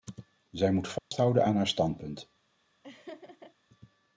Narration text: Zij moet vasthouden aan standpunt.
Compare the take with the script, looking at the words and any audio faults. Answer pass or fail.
fail